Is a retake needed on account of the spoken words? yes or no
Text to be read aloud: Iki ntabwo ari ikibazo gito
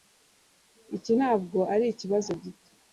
no